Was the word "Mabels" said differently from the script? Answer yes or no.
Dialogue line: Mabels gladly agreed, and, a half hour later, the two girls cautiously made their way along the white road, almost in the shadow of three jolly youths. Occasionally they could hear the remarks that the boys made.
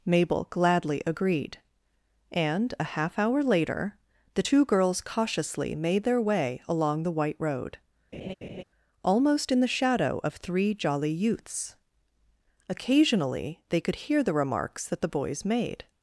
yes